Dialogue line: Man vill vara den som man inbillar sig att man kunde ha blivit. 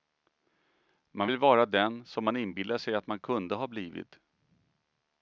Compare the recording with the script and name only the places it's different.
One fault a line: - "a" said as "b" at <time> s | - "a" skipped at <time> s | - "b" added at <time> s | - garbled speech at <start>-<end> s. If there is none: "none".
none